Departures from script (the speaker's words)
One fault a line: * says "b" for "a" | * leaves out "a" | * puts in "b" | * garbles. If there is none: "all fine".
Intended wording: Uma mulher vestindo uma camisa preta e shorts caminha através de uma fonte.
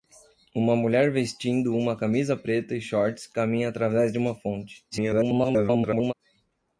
* garbles